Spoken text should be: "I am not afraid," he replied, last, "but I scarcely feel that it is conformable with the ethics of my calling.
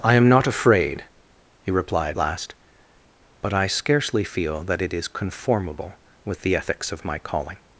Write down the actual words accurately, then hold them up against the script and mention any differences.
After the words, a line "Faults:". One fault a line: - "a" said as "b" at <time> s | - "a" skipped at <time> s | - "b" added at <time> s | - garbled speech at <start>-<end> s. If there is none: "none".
"I am not afraid," he replied, last, "but I scarcely feel that it is conformable with the ethics of my calling.
Faults:
none